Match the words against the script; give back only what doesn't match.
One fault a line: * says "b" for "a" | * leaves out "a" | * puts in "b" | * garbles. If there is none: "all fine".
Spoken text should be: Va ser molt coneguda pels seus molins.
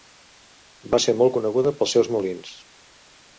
all fine